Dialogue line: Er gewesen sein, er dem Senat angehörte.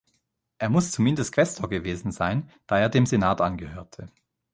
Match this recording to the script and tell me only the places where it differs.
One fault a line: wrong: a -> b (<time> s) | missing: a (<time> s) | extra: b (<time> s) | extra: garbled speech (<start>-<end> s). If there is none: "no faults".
extra: muss zumindest Quästor (0.7 s)
extra: da (2.7 s)